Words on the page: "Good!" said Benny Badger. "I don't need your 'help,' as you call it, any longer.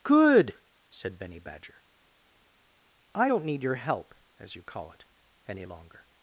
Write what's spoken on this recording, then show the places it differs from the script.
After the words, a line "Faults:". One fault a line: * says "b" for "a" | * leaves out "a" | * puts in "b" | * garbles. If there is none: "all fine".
"Good!" said Benny Badger. "I don't need your 'help,' as you call it, any longer.
Faults:
all fine